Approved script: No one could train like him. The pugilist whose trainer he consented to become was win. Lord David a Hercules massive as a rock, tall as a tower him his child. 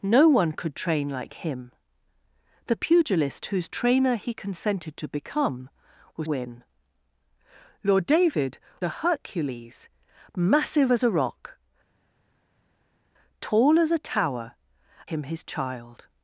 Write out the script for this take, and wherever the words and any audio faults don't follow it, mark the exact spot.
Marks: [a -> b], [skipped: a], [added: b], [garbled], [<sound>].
No one could train like him. The pugilist whose trainer he consented to become was win. Lord David a Hercules massive as a rock, tall as a tower him his child.